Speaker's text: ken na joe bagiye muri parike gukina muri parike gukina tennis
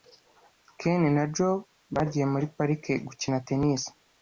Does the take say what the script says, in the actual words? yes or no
no